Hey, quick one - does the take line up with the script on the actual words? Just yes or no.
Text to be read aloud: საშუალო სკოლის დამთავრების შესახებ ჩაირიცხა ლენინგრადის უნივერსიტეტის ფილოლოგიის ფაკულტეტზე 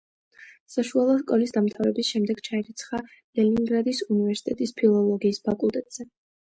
no